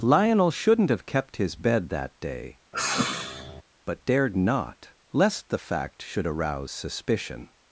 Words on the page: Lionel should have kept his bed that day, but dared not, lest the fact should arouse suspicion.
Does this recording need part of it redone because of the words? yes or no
yes